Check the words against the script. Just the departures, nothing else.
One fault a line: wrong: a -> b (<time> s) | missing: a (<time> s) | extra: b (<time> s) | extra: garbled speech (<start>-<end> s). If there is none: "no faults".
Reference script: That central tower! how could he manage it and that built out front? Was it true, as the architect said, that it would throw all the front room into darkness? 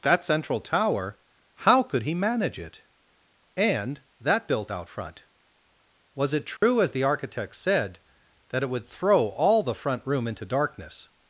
no faults